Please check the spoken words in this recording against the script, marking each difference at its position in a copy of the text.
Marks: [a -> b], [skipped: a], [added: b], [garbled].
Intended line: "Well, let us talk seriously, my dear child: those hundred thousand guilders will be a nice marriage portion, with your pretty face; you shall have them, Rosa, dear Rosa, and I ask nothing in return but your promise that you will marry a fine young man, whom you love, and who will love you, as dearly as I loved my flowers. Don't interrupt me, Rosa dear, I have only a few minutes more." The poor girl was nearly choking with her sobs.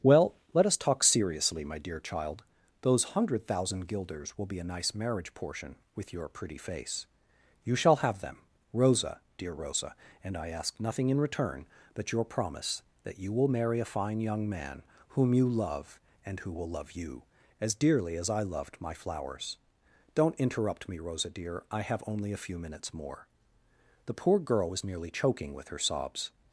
"Well, let us talk seriously, my dear child: those hundred thousand guilders will be a nice marriage portion, with your pretty face; you shall have them, Rosa, dear Rosa, and I ask nothing in return but your promise that you will marry a fine young man, whom you love, and who will love you, as dearly as I loved my flowers. Don't interrupt me, Rosa dear, I have only a few minutes more." The poor girl was nearly choking with her sobs.